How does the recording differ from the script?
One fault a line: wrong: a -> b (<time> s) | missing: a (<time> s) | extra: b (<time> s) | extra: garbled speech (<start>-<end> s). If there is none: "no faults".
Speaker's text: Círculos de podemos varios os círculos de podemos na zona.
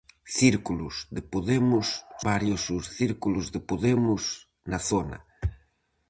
no faults